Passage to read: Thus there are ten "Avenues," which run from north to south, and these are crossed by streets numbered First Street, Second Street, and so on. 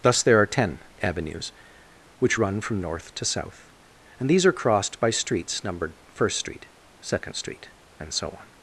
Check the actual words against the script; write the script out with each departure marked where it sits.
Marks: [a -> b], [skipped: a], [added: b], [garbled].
Thus there are ten "Avenues," which run from north to south, and these are crossed by streets numbered First Street, Second Street, and so on.